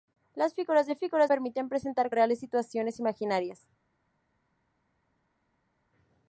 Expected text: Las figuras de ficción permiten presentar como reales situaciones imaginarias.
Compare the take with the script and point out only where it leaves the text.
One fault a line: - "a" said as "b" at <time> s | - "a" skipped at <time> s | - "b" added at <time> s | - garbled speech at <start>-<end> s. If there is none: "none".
- "ficción" said as "figuras" at 1.0 s
- "como" skipped at 2.1 s